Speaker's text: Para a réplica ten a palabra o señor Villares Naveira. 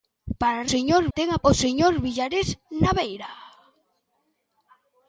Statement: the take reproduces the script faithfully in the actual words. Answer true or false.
false